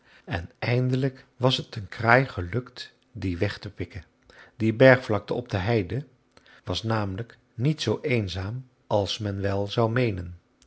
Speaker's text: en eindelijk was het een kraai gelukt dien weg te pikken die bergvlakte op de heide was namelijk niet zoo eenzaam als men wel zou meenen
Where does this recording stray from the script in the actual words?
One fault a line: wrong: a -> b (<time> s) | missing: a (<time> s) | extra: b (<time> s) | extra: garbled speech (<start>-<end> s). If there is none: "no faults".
no faults